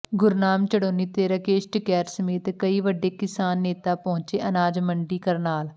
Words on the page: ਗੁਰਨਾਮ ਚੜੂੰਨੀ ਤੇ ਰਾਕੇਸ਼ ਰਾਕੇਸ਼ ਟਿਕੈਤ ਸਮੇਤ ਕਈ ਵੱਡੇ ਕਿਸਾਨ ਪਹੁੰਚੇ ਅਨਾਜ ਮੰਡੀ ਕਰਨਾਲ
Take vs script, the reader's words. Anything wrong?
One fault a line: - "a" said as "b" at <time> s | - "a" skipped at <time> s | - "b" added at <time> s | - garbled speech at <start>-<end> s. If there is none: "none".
- "ਰਾਕੇਸ਼" skipped at 1.7 s
- "ਨੇਤਾ" added at 3.6 s